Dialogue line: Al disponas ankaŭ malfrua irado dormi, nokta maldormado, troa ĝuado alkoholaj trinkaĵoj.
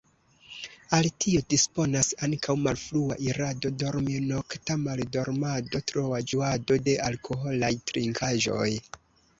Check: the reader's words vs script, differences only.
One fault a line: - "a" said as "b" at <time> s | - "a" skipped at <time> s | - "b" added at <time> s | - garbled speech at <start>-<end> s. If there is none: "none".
- "tio" added at 1.2 s
- "de" added at 6.9 s